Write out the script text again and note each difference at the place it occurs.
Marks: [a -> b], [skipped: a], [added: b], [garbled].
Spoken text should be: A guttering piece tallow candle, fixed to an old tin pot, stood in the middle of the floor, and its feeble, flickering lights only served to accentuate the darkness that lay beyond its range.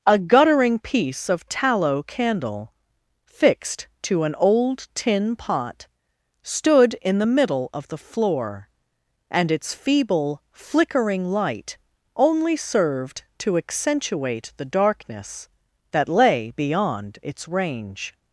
A guttering piece [added: of] tallow candle, fixed to an old tin pot, stood in the middle of the floor, and its feeble, flickering [lights -> light] only served to accentuate the darkness that lay beyond its range.